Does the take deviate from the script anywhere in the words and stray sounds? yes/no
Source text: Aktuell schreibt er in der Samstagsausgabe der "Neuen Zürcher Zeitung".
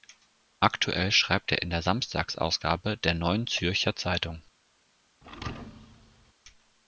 yes